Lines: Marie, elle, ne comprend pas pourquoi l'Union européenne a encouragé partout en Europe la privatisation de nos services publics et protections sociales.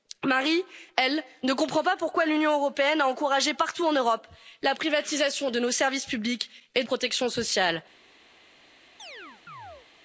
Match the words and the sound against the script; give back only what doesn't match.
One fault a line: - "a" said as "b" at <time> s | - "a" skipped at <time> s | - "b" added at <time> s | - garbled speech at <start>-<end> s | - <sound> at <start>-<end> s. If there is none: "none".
- chirp at 9.0-9.9 s